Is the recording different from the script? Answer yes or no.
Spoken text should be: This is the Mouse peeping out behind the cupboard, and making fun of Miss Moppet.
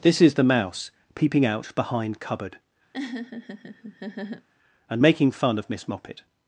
yes